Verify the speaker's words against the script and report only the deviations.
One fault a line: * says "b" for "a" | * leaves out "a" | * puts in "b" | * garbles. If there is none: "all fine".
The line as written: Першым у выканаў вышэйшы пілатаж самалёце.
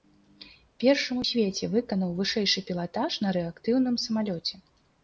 * puts in "свеце"
* puts in "на рэактыўным"